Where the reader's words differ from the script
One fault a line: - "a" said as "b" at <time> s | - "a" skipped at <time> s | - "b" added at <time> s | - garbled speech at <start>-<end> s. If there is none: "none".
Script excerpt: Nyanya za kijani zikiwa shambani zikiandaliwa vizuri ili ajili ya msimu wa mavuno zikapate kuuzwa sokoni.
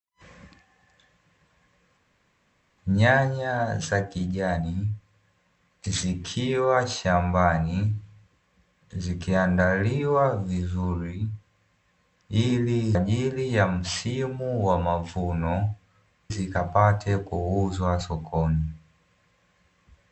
none